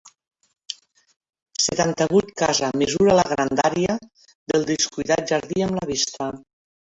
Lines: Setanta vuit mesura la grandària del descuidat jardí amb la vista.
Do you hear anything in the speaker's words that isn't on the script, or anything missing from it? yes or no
yes